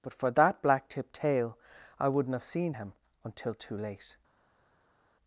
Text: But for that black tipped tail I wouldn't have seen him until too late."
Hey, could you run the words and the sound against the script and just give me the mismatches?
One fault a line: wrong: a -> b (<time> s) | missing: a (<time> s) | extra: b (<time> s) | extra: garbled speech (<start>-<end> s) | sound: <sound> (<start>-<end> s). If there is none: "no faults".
no faults